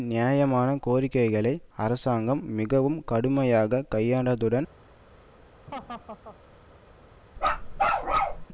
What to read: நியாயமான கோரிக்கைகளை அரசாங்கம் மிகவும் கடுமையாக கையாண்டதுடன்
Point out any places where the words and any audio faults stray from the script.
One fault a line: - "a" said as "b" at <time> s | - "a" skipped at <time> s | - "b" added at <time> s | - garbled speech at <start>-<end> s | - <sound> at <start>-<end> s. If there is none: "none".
- laugh at 5.7-6.4 s
- bark at 7.4-8.5 s